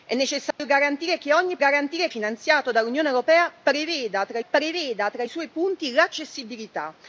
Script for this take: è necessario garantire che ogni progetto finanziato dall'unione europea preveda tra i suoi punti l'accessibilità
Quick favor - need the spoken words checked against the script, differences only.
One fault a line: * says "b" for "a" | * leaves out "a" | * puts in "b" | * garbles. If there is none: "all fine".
* says "garantire" for "progetto"
* puts in "preveda tra"